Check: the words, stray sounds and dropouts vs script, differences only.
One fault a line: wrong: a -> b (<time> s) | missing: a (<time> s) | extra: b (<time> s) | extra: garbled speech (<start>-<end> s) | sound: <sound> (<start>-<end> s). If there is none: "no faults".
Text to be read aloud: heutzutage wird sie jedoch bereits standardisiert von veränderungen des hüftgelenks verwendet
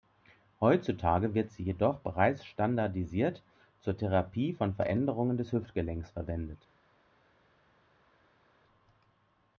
extra: zur therapie (3.8 s)